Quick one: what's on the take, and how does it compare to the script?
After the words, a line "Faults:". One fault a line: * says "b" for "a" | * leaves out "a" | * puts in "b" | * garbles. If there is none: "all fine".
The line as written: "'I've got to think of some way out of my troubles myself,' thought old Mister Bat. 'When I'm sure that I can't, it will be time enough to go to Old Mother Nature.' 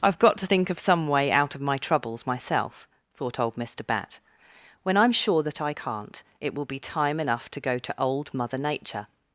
"'I've got to think of some way out of my troubles myself,' thought old Mister Bat. 'When I'm sure that I can't, it will be time enough to go to Old Mother Nature.'
Faults:
all fine